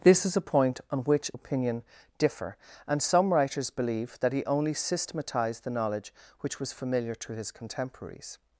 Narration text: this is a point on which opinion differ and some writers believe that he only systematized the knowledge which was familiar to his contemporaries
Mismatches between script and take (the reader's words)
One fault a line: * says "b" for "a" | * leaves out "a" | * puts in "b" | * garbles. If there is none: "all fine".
all fine